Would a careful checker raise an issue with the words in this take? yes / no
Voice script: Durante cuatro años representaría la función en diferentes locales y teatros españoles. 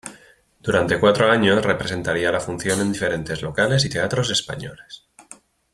no